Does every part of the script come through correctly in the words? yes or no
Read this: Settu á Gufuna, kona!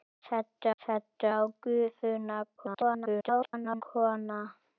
no